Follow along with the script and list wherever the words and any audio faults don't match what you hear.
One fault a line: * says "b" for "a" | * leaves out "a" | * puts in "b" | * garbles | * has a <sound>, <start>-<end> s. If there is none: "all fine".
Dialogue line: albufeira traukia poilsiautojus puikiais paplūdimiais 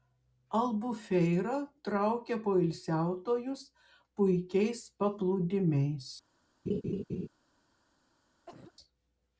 * has a laugh, 6.7-7.3 s
* has a cough, 8.5-8.7 s